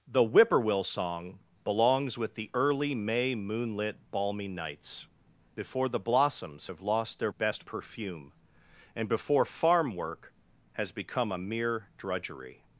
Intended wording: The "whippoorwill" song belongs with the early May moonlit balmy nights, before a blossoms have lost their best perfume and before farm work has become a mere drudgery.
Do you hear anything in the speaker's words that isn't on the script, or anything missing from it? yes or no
yes